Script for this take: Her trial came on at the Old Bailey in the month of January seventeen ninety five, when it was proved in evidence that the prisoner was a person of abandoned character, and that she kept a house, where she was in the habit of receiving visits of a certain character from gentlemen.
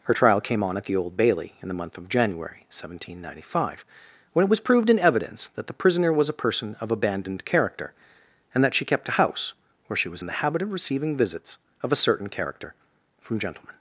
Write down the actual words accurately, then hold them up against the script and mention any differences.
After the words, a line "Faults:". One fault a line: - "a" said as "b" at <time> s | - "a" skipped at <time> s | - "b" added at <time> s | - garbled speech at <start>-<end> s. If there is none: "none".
Her trial came on at the Old Bailey in the month of January seventeen ninety five, when it was proved in evidence that the prisoner was a person of abandoned character, and that she kept a house, where she was in the habit of receiving visits of a certain character from gentlemen.
Faults:
none